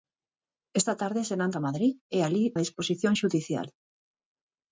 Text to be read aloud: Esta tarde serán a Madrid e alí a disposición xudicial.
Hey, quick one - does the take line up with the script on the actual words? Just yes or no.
yes